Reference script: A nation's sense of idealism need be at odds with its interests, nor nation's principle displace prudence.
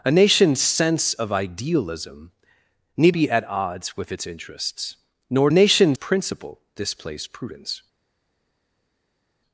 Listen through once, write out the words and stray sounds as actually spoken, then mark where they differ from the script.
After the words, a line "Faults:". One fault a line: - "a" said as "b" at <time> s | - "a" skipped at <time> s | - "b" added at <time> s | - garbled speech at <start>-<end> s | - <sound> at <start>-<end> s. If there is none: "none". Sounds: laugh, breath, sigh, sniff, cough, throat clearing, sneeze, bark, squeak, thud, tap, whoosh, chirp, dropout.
A nation's sense of idealism need be at odds with its interests, nor nation's principle displace prudence.
Faults:
none